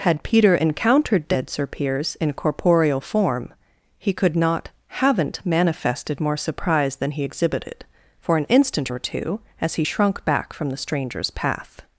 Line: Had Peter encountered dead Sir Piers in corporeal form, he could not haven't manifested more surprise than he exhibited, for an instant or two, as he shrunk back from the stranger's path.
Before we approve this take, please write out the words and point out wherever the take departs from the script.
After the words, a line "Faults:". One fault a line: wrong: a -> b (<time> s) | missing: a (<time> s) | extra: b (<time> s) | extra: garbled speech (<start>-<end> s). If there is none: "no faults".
Had Peter encountered dead Sir Piers in corporeal form, he could not haven't manifested more surprise than he exhibited, for an instant or two, as he shrunk back from the stranger's path.
Faults:
no faults